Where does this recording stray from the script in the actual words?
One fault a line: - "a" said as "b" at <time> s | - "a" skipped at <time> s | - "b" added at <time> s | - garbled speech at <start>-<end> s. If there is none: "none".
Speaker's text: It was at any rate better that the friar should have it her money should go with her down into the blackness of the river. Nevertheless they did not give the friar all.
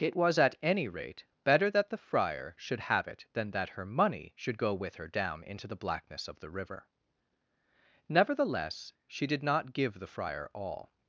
- "than that" added at 3.3 s
- "they" said as "she" at 9.1 s